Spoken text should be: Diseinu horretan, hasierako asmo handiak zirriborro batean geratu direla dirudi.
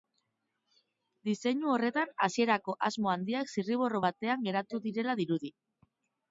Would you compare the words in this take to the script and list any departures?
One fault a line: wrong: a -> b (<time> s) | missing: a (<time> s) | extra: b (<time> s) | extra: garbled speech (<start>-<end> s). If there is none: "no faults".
no faults